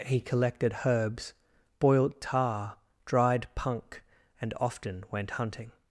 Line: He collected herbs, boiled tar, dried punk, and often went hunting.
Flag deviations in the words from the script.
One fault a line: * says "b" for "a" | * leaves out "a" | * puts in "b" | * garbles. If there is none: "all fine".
all fine